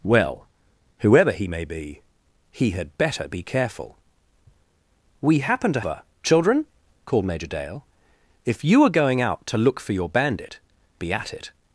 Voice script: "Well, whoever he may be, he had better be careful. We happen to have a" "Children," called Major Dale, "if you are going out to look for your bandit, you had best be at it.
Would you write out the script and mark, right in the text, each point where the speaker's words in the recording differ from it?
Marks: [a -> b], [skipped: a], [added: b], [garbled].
"Well, whoever he may be, he had better be careful. We happen to [skipped: have] a" "Children," called Major Dale, "if you are going out to look for your bandit, [skipped: you had best] be at it.